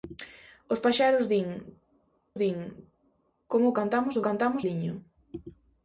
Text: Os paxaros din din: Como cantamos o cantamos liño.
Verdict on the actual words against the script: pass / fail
pass